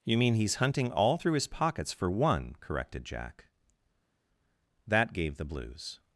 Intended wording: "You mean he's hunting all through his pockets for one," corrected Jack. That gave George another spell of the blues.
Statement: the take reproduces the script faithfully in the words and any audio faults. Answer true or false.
false